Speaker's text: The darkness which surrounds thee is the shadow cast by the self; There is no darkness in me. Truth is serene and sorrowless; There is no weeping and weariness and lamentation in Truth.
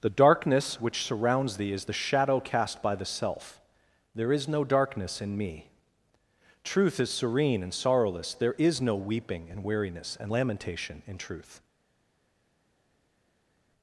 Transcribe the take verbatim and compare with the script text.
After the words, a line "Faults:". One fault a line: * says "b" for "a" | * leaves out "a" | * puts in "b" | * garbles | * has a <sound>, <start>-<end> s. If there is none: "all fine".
The darkness which surrounds thee is the shadow cast by the self; There is no darkness in me. Truth is serene and sorrowless; There is no weeping and weariness and lamentation in Truth.
Faults:
all fine